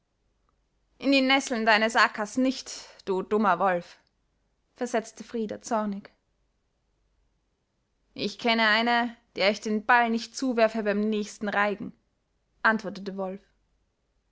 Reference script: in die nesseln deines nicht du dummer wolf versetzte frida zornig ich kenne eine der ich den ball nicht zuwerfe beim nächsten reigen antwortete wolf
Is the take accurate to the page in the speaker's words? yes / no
no